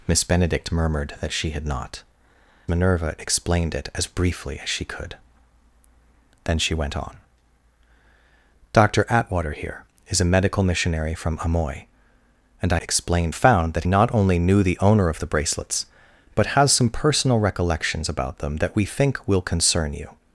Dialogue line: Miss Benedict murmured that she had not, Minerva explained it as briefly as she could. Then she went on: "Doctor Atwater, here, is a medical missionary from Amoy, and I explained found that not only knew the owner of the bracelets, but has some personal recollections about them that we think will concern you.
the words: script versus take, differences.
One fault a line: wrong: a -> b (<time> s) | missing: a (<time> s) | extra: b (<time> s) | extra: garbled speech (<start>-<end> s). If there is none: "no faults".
no faults